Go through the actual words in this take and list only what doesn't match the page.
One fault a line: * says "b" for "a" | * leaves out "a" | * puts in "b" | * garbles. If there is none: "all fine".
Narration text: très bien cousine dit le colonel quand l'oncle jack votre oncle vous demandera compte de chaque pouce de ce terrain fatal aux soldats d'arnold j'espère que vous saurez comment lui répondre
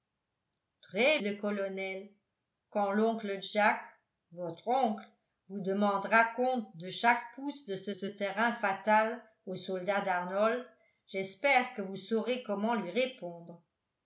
* leaves out "bien cousine dit"
* puts in "ce"